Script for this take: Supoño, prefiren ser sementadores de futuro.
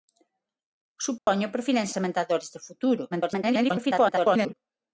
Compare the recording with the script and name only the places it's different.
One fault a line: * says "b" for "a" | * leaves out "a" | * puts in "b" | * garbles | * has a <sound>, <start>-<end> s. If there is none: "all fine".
* has a dropout, 1.2-1.3 s
* leaves out "ser"
* garbles